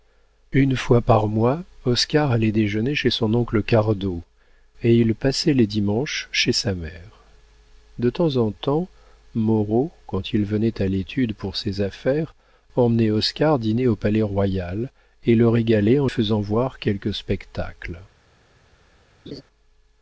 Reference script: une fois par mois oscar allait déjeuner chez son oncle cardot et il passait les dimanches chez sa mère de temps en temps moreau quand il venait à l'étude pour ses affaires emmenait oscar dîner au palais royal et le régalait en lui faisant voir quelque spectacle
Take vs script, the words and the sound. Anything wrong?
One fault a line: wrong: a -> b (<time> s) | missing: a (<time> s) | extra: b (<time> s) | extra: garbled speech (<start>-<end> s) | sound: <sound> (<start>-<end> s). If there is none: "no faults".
missing: lui (16.1 s)
sound: laugh (19.3-19.4 s)